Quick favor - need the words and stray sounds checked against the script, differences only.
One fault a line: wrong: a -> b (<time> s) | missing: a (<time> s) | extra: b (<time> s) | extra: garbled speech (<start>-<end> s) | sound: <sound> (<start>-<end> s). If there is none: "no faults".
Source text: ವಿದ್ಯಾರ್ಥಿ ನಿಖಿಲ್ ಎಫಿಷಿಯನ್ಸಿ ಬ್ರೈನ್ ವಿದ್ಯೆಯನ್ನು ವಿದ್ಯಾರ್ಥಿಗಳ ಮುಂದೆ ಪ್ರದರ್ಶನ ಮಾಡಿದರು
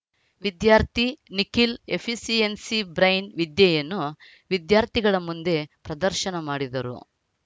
no faults